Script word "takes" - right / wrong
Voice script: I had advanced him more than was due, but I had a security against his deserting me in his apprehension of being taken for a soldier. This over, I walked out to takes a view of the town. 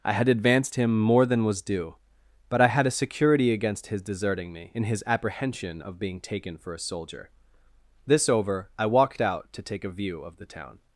wrong